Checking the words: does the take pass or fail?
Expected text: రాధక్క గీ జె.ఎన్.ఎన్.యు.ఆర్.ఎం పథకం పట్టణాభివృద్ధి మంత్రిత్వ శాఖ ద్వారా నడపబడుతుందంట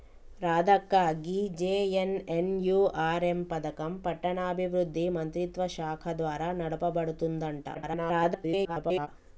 fail